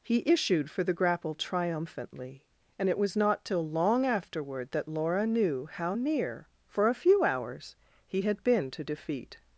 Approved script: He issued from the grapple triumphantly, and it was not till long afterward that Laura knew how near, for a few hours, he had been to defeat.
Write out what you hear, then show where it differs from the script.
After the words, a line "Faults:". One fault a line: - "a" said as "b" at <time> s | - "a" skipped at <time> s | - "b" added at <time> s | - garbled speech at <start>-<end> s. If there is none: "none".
He issued for the grapple triumphantly, and it was not till long afterward that Laura knew how near, for a few hours, he had been to defeat.
Faults:
- "from" said as "for" at 0.7 s